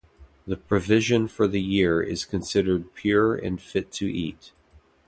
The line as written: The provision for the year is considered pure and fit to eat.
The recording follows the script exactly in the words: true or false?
true